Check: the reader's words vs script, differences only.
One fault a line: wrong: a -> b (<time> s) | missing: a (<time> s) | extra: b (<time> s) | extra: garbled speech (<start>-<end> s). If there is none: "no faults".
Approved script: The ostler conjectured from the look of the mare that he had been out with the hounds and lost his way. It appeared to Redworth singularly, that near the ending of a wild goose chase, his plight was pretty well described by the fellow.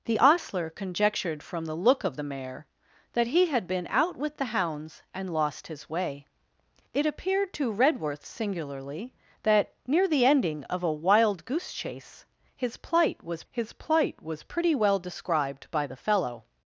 extra: his plight was (13.5 s)